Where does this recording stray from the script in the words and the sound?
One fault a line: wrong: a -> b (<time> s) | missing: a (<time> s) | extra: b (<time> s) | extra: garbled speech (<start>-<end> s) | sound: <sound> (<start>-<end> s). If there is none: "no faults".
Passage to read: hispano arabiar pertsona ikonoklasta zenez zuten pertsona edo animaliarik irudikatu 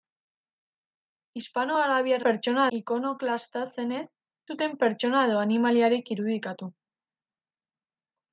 no faults